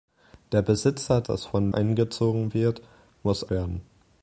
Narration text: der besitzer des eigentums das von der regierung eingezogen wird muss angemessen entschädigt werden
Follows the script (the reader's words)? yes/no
no